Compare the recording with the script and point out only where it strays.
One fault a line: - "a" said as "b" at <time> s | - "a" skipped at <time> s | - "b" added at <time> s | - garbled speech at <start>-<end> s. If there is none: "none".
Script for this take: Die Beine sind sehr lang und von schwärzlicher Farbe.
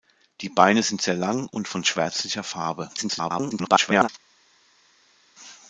- garbled speech at 3.0-4.1 s